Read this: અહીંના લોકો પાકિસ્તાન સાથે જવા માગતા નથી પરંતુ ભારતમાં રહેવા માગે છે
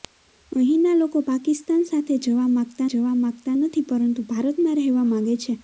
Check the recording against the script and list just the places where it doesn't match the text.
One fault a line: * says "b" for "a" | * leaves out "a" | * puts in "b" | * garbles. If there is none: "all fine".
* puts in "જવા માગતા"